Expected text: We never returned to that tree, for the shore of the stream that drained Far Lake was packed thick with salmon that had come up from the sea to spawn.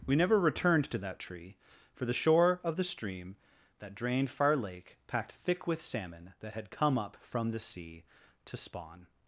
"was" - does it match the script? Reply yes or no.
no